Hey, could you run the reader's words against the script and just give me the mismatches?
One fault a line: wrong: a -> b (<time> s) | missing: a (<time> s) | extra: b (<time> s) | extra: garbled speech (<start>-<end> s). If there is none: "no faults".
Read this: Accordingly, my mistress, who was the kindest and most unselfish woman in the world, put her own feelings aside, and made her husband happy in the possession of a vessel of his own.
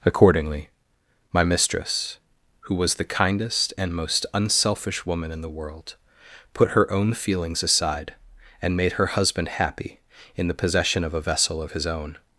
no faults